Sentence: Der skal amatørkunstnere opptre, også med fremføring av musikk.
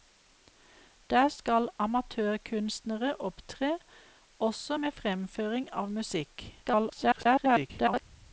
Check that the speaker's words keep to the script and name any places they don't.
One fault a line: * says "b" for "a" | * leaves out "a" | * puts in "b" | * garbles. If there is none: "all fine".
* garbles